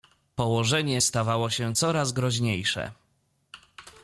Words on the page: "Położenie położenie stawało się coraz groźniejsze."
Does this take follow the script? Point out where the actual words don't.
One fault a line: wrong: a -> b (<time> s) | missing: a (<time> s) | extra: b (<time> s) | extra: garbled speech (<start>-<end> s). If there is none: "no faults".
missing: położenie (1.0 s)